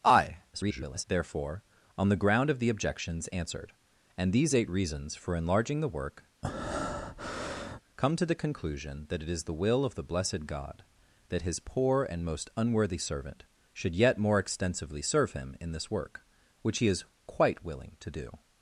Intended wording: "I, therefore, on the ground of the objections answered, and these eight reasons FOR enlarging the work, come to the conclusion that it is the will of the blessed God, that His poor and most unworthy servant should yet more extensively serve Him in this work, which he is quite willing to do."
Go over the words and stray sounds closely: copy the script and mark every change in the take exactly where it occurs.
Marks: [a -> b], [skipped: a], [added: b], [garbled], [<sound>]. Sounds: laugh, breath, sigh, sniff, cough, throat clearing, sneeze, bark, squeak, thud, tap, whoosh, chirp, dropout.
"I, [garbled] therefore, on the ground of the objections answered, and these eight reasons FOR enlarging the work, [breath] come to the conclusion that it is the will of the blessed God, that His poor and most unworthy servant should yet more extensively serve Him in this work, which he is quite willing to do."